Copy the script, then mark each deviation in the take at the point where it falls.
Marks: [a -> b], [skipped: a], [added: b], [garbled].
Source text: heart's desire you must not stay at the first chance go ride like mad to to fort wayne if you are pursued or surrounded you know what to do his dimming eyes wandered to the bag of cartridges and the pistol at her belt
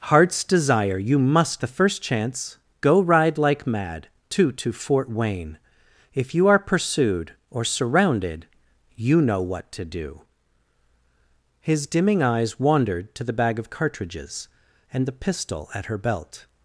heart's desire you must [skipped: not stay at] the first chance go ride like mad to to fort wayne if you are pursued or surrounded you know what to do his dimming eyes wandered to the bag of cartridges and the pistol at her belt